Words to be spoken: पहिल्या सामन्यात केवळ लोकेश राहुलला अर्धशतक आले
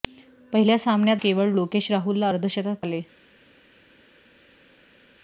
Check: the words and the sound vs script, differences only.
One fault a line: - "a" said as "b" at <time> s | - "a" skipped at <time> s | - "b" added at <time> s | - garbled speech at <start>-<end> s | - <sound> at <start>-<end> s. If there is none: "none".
none